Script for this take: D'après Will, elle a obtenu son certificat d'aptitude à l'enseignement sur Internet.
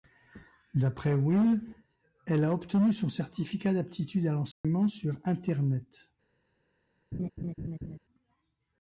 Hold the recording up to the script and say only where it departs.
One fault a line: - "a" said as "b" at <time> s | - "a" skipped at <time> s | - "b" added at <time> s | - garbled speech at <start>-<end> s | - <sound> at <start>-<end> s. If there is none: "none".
- dropout at 4.5-4.6 s
- laugh at 7.1-8.0 s